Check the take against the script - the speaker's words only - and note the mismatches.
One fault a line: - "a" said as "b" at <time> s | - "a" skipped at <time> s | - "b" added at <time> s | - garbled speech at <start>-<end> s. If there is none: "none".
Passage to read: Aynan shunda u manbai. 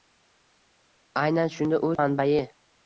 none